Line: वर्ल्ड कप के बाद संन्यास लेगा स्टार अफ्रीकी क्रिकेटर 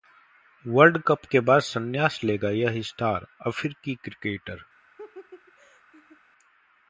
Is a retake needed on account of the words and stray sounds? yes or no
yes